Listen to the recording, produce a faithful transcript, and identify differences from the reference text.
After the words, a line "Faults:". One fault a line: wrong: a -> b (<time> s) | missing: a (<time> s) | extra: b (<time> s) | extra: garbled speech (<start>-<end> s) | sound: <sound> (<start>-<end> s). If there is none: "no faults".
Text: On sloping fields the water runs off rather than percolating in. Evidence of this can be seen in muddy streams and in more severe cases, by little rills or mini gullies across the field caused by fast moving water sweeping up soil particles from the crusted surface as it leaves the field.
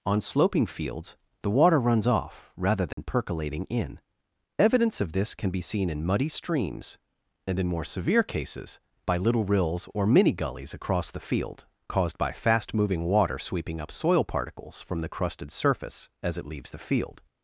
On sloping fields the water runs off rather than percolating in. Evidence of this can be seen in muddy streams and in more severe cases, by little rills or mini gullies across the field caused by fast moving water sweeping up soil particles from the crusted surface as it leaves the field.
Faults:
sound: dropout (2.9-3.0 s)